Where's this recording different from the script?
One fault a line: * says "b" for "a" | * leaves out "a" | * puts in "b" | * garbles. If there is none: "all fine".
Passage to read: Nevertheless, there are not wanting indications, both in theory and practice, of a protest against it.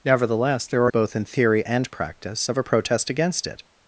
* leaves out "not wanting indications"